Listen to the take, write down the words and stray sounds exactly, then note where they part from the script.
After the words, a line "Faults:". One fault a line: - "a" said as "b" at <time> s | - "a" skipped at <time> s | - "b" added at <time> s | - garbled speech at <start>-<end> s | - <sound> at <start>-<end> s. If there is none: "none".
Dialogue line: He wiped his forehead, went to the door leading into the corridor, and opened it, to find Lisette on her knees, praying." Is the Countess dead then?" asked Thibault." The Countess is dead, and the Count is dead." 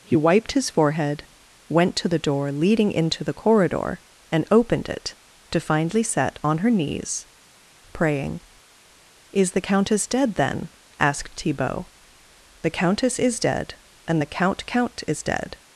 He wiped his forehead, went to the door leading into the corridor, and opened it, to find Lisette on her knees, praying." Is the Countess dead then?" asked Thibault." The Countess is dead, and the Count Count is dead."
Faults:
- "Count" added at 14.7 s